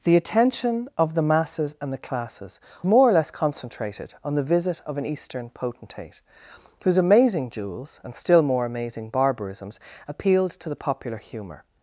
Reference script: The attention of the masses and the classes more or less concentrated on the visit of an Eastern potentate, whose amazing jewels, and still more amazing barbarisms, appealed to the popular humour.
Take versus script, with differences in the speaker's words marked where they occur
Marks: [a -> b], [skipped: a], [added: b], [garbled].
The attention of the masses and the classes more or less concentrated on the visit of an Eastern potentate, whose amazing jewels, and still more amazing barbarisms, appealed to the popular humour.